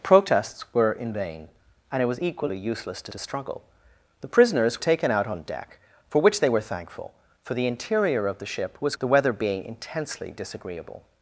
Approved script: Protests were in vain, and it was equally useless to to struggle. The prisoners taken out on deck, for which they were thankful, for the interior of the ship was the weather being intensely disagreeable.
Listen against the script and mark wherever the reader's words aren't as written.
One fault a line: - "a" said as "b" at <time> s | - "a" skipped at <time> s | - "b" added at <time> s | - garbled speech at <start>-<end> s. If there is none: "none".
none